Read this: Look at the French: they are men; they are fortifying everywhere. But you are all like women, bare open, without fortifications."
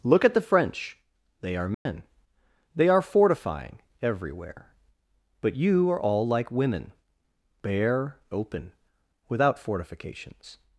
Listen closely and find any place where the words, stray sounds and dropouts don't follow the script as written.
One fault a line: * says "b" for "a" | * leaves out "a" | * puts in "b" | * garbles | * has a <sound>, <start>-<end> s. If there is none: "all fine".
* has a dropout, 1.7-1.9 s